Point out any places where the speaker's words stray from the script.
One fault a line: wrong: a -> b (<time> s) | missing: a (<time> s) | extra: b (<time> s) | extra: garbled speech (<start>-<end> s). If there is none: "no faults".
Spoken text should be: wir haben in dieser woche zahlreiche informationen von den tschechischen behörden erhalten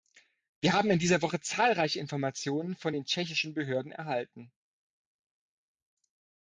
no faults